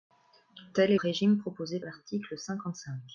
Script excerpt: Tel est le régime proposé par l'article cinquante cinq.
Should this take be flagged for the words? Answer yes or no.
yes